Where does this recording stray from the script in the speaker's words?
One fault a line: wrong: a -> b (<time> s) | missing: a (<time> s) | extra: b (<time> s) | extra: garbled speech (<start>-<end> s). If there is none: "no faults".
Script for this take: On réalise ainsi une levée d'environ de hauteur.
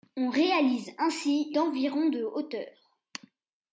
missing: une levée (1.5 s)